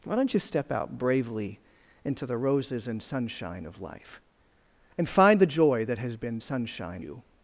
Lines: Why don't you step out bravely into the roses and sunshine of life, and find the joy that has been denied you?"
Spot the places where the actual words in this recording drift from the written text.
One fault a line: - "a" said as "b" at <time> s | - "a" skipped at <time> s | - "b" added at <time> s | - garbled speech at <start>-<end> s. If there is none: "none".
- "denied" said as "sunshine" at 6.4 s